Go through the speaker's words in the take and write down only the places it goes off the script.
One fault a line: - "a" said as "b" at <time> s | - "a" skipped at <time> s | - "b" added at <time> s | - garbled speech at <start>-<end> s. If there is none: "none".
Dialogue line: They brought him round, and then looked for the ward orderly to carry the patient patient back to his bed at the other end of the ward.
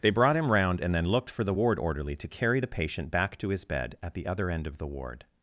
- "patient" skipped at 3.1 s